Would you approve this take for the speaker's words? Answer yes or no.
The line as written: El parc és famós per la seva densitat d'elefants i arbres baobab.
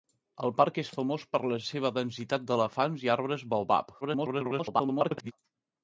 no